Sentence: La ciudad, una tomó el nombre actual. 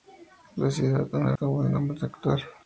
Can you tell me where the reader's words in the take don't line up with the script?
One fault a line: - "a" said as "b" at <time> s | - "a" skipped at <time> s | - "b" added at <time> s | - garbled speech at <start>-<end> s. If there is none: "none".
none